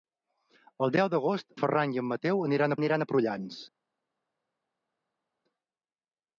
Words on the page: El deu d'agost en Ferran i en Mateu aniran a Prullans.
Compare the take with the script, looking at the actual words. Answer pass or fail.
fail